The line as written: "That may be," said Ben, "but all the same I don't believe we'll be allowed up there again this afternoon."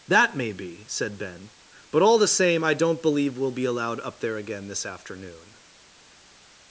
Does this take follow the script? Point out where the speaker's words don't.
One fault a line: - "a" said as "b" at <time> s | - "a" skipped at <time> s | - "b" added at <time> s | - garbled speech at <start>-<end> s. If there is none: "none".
none